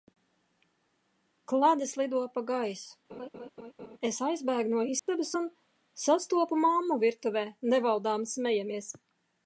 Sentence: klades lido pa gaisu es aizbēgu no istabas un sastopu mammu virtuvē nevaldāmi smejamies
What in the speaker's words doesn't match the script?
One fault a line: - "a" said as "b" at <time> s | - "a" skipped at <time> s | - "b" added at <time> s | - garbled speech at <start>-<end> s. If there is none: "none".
none